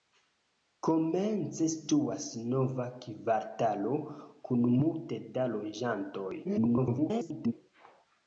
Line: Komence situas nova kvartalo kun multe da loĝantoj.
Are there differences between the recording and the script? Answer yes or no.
yes